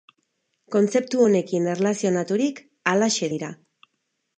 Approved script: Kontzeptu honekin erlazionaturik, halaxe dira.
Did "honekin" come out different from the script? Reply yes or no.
no